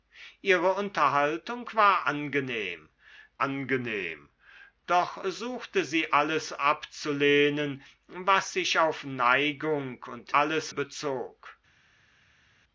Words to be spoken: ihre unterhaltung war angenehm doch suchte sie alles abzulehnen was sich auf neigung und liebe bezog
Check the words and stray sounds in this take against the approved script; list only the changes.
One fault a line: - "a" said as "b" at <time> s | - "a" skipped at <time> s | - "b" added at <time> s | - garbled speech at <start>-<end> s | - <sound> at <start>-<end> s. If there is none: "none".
- "angenehm" added at 3.4 s
- "liebe" said as "alles" at 10.3 s